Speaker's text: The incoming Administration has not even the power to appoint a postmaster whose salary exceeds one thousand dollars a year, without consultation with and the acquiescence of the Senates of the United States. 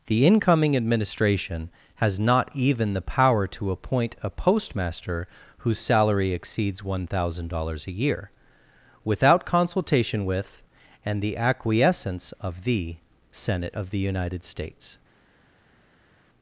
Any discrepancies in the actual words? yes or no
yes